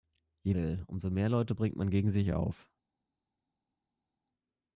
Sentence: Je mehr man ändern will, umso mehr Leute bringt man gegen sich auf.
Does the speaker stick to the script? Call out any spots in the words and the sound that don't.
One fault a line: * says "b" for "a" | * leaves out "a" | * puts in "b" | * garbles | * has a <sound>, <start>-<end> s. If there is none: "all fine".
* leaves out "mehr man ändern"